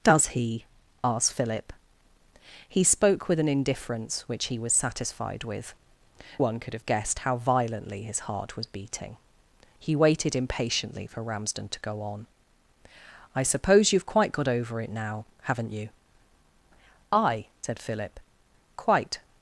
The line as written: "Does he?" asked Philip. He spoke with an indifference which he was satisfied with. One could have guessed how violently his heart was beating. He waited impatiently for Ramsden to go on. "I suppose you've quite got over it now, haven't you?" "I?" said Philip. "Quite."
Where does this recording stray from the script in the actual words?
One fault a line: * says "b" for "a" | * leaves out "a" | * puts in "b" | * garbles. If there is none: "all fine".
all fine